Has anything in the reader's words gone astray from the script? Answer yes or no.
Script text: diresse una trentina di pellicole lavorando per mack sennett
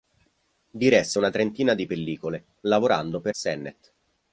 yes